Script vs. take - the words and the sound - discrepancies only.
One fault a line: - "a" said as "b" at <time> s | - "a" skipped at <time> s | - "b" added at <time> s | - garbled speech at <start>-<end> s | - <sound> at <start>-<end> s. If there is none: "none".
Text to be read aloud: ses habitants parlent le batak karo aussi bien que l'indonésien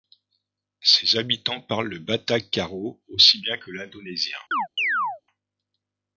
- chirp at 4.5-5.2 s